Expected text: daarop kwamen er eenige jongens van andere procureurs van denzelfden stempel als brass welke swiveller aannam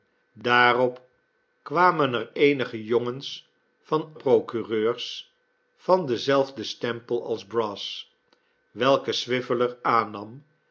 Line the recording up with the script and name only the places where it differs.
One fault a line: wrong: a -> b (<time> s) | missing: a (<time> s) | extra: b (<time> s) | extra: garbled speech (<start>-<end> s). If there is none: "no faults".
missing: andere (4.1 s)